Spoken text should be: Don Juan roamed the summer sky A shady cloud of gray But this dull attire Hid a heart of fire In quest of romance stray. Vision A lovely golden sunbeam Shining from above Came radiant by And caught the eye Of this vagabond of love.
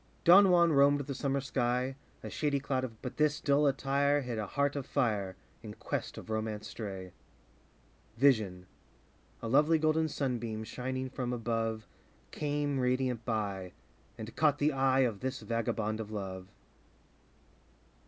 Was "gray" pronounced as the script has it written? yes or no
no